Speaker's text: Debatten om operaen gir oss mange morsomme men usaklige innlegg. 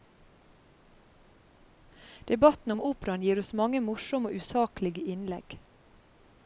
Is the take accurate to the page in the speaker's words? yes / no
no